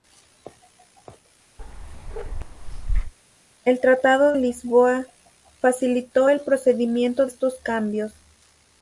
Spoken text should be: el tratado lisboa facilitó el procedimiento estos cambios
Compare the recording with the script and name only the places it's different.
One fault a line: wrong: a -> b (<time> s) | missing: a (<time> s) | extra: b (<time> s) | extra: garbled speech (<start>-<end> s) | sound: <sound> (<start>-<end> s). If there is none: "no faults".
sound: bark (1.6-3.1 s)